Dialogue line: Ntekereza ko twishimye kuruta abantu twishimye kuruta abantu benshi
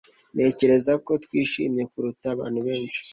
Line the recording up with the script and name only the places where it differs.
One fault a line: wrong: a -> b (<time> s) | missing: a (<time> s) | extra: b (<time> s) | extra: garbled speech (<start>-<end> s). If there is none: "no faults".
missing: twishimye kuruta abantu (2.6 s)